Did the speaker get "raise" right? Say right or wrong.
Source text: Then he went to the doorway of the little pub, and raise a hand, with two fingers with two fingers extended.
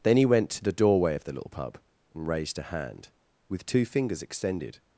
wrong